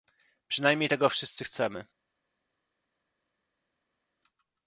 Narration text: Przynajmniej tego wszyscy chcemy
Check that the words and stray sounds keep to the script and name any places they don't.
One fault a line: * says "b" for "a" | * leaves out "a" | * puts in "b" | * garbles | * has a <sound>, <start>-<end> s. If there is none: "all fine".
all fine